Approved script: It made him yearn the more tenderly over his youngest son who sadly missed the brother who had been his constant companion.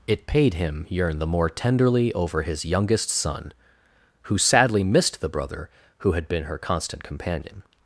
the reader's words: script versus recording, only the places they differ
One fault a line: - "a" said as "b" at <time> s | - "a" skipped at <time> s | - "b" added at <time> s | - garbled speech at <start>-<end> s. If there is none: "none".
- "made" said as "paid" at 0.3 s
- "his" said as "her" at 6.4 s